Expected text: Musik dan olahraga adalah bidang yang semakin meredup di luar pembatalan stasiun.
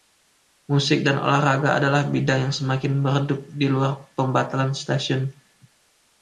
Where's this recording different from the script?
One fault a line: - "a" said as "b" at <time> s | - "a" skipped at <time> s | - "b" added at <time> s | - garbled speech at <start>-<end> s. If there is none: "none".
none